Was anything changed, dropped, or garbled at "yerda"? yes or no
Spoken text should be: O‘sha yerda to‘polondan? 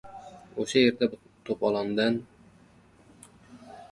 no